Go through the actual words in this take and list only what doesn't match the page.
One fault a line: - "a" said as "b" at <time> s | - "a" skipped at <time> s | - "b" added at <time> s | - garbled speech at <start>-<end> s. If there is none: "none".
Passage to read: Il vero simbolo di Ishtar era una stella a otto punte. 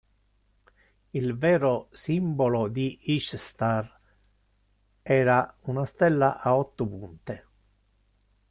none